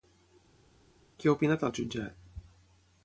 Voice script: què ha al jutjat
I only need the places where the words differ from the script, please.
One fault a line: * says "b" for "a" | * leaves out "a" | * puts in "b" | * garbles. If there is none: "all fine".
* puts in "opinat"